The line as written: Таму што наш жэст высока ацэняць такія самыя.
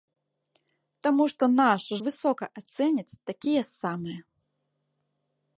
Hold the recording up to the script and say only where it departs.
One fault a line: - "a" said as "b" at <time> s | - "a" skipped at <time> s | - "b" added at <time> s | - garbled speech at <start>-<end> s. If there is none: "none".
- "жэст" skipped at 1.8 s